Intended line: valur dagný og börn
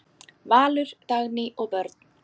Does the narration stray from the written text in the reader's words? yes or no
no